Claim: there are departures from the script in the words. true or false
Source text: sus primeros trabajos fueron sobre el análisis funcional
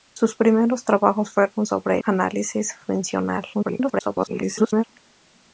true